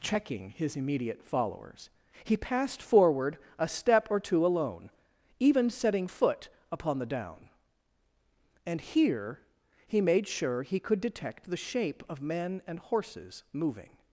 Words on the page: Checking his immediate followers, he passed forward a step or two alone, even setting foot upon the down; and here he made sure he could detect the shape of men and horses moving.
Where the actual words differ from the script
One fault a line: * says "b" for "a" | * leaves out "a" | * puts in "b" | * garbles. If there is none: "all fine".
all fine